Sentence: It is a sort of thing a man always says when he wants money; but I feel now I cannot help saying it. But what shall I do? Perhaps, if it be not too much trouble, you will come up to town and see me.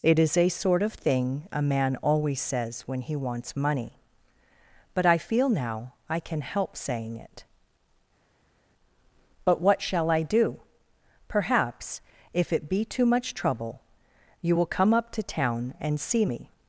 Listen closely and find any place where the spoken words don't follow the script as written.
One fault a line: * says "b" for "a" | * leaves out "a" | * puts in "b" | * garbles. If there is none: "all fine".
* says "can" for "cannot"
* leaves out "not"